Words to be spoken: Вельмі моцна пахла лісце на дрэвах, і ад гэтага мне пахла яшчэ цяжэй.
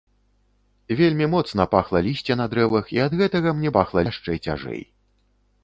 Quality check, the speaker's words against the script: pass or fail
pass